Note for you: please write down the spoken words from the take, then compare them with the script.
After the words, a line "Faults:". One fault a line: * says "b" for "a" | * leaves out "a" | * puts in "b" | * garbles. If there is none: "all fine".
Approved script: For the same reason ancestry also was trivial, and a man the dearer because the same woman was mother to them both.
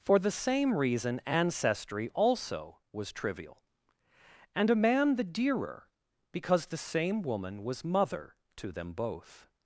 For the same reason ancestry also was trivial, and a man the dearer because the same woman was mother to them both.
Faults:
all fine